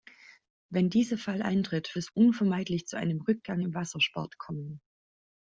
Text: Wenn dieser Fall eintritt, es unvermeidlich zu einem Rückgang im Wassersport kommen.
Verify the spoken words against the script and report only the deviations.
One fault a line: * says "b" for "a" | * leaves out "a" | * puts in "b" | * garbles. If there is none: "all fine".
all fine